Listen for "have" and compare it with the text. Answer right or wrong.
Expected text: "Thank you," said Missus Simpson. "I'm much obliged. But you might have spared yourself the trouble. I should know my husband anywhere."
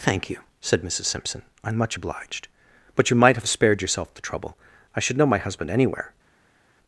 right